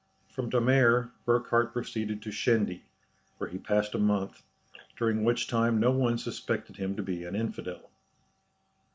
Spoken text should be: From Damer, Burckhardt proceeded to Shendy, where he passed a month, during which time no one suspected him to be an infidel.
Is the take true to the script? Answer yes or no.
yes